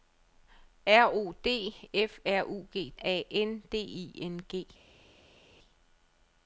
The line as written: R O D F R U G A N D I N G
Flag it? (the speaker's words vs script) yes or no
no